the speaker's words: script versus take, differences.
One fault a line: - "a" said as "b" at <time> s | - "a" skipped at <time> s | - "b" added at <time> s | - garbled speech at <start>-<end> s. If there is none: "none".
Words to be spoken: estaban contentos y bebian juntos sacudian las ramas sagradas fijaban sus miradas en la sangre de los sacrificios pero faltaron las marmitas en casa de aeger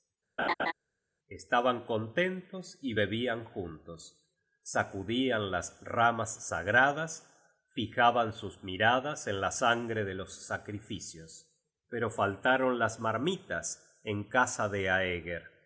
none